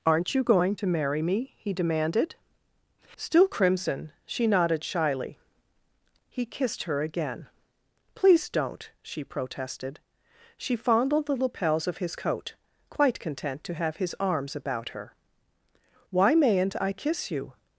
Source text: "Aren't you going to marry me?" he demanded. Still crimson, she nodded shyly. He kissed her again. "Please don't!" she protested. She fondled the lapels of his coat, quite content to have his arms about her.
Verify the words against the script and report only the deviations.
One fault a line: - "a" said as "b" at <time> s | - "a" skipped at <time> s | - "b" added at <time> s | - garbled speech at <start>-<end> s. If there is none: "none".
- "Why mayn't I kiss you" added at 16.1 s